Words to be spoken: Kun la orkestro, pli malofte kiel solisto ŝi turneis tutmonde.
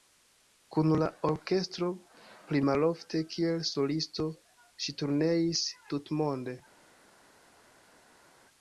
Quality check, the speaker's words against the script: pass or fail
pass